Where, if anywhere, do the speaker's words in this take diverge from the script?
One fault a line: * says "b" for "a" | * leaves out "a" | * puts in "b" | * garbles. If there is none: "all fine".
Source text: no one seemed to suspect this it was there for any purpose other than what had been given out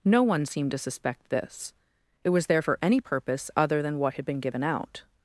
all fine